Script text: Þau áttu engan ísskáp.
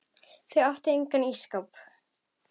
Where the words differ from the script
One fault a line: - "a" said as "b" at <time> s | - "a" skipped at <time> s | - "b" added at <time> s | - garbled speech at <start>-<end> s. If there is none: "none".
none